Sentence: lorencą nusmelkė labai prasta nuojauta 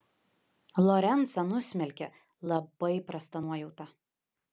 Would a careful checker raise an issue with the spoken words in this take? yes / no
no